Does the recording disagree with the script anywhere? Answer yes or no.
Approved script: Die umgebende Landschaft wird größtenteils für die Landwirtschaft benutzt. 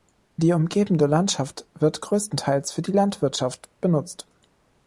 no